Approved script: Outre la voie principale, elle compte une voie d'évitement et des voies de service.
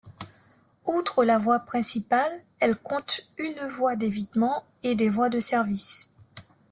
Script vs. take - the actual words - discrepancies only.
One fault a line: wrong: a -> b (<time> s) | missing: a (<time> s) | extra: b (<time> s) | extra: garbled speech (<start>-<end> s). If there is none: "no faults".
no faults